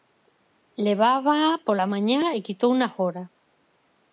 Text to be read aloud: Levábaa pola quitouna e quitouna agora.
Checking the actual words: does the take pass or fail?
fail